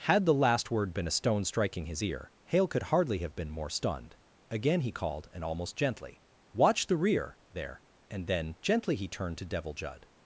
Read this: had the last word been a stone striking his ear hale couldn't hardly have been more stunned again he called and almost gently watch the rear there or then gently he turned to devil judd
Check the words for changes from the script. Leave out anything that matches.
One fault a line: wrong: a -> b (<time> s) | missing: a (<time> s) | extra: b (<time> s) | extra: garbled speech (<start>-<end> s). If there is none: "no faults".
wrong: couldn't -> could (2.7 s)
wrong: or -> and (8.1 s)